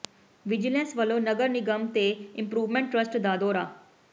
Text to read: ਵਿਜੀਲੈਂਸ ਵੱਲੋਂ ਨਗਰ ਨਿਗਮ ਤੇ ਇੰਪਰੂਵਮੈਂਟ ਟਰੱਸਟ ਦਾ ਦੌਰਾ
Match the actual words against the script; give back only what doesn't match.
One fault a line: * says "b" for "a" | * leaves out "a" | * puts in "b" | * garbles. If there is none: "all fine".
all fine